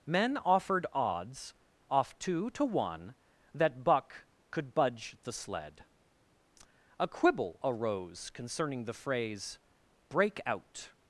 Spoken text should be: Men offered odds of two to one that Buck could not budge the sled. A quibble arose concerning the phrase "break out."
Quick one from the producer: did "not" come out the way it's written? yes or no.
no